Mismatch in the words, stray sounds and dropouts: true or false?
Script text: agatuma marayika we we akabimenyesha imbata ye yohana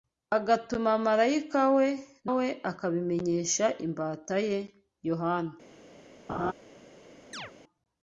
true